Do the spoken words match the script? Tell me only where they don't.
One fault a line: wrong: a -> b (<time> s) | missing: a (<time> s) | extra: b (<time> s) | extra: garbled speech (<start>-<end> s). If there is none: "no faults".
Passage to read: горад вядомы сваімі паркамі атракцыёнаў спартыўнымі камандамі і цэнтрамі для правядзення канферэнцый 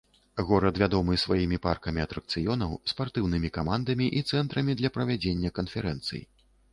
no faults